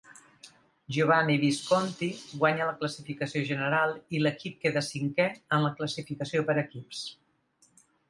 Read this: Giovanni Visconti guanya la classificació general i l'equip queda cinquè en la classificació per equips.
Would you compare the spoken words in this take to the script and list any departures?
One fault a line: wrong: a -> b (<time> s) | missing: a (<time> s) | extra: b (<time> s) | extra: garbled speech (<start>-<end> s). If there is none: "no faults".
no faults